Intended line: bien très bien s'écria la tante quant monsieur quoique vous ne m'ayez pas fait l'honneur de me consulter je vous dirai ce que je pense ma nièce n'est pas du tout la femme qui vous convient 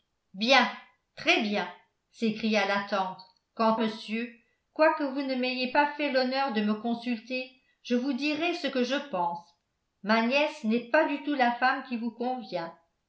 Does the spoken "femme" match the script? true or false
true